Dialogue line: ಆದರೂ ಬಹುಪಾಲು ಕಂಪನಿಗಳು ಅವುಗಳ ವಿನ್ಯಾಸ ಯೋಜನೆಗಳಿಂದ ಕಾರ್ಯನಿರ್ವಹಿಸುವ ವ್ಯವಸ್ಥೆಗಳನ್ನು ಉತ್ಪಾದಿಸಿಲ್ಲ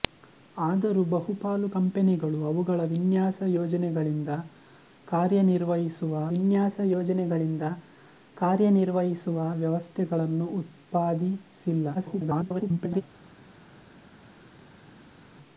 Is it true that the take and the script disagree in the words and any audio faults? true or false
true